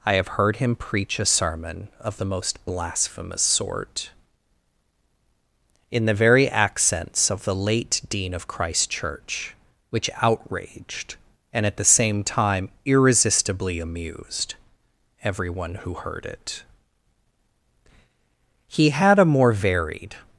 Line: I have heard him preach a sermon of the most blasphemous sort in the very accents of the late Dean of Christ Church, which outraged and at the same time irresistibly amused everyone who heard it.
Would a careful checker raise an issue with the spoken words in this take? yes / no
yes